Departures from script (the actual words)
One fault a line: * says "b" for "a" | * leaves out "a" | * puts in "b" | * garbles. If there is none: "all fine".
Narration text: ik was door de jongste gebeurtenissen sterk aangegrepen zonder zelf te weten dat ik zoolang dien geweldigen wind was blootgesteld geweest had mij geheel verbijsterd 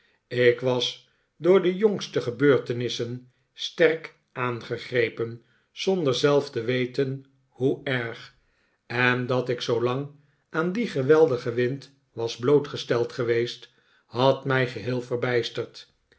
* puts in "hoe erg en"
* puts in "aan"